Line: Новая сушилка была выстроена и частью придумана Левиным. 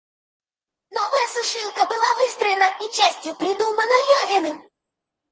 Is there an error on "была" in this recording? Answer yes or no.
no